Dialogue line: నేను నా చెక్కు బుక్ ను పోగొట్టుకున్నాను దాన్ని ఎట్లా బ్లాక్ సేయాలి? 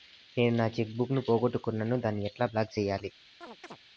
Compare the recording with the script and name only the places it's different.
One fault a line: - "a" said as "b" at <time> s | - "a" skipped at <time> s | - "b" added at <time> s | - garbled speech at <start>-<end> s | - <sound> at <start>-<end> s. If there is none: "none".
- chirp at 3.4-3.8 s